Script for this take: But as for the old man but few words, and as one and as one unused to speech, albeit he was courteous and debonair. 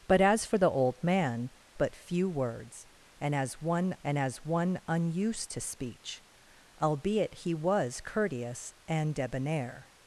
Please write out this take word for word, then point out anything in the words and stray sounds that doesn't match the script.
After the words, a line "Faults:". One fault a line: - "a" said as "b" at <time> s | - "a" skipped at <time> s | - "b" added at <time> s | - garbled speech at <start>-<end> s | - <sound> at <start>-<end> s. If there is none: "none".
But as for the old man but few words, and as one and as one unused to speech, albeit he was courteous and debonair.
Faults:
none